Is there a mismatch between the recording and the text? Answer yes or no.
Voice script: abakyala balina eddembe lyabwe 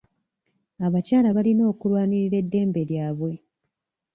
yes